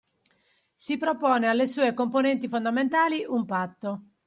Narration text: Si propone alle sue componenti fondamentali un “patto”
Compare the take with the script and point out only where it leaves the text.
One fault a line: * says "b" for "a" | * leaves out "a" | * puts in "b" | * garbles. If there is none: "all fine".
all fine